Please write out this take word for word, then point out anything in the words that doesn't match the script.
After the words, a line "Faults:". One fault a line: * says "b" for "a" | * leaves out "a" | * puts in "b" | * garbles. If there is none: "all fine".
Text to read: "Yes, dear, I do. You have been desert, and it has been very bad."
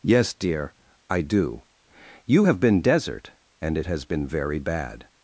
"Yes, dear, I do. You have been desert, and it has been very bad."
Faults:
all fine